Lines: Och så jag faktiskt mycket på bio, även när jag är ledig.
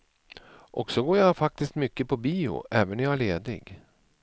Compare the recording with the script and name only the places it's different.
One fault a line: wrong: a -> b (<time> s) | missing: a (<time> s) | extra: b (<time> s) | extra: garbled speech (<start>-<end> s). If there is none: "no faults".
extra: går (1.0 s)